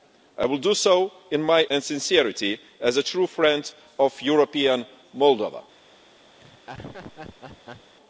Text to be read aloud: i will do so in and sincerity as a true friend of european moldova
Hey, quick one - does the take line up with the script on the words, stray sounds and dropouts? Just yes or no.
no